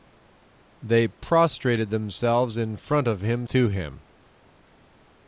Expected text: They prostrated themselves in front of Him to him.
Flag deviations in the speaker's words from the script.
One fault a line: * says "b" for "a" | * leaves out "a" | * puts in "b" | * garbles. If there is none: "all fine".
all fine